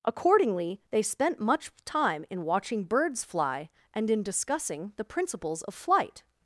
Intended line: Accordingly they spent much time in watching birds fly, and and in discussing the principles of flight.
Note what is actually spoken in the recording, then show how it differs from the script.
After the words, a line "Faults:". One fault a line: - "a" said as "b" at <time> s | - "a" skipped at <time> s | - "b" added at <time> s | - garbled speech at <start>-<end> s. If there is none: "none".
Accordingly they spent much time in watching birds fly, and in discussing the principles of flight.
Faults:
- "and" skipped at 4.1 s